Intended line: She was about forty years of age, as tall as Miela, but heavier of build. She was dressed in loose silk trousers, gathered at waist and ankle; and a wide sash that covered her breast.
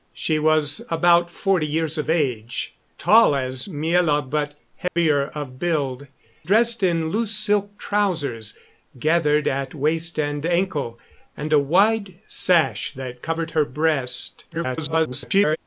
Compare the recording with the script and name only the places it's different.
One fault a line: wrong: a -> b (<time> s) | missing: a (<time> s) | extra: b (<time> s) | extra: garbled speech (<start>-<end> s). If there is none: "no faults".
missing: as (2.7 s)
missing: She was (6.1 s)
extra: garbled speech (14.5-15.6 s)